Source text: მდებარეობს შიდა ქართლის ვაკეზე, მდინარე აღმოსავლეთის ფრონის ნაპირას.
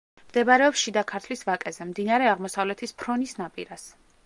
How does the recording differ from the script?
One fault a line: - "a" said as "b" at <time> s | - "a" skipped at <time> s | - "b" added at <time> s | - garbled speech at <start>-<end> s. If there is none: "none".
none